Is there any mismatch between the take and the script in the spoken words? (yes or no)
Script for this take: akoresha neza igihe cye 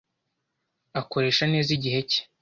no